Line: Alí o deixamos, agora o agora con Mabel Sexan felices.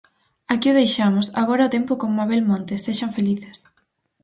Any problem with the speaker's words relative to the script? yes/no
yes